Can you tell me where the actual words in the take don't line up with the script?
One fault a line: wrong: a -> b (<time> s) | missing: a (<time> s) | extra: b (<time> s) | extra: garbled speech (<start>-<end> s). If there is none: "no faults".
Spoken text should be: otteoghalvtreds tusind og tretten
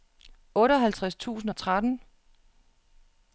no faults